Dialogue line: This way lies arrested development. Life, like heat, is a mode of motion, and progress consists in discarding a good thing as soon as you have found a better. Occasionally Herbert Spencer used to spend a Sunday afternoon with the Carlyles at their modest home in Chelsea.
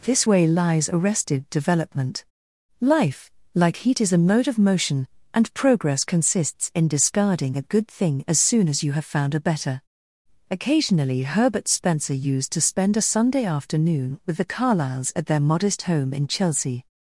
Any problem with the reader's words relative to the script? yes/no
no